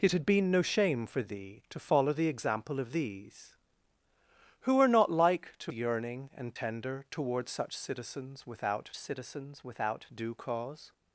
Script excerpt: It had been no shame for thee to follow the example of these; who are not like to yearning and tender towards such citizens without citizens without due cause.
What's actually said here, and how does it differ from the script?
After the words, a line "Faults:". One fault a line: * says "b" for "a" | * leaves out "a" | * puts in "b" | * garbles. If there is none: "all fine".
It had been no shame for thee to follow the example of these; who are not like to yearning and tender towards such citizens without citizens without due cause.
Faults:
all fine